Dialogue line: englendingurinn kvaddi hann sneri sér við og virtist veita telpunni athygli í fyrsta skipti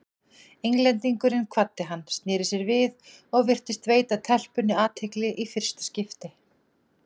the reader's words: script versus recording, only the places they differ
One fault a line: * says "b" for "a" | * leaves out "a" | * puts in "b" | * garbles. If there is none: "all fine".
all fine